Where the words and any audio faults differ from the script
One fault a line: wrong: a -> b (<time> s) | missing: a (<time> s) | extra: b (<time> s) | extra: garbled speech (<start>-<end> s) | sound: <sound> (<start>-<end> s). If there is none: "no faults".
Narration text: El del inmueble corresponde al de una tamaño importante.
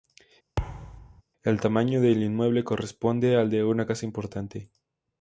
sound: thud (0.6-1.2 s)
extra: tamaño (1.6 s)
wrong: tamaño -> casa (3.9 s)